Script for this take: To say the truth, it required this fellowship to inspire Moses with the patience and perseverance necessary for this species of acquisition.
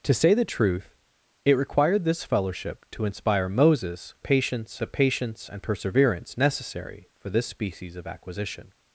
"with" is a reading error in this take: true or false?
true